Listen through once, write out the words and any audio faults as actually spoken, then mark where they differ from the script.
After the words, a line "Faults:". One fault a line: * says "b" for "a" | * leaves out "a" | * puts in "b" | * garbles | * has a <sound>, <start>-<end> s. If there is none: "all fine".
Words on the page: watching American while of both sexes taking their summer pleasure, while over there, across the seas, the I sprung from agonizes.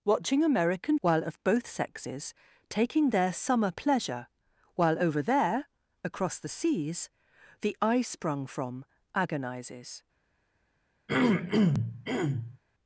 watching American while of both sexes taking their summer pleasure, while over there, across the seas, the I sprung from agonizes.
Faults:
* has a throat clearing, 11.1-12.6 s